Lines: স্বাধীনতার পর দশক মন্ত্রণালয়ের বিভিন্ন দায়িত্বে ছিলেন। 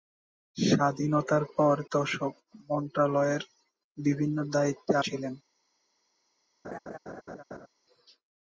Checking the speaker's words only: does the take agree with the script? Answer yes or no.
yes